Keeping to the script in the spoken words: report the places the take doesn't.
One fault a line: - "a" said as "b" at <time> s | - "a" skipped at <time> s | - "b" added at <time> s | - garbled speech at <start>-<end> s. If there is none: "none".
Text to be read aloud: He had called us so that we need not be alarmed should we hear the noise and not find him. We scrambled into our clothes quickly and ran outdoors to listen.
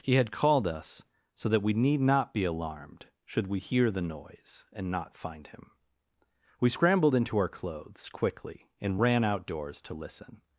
none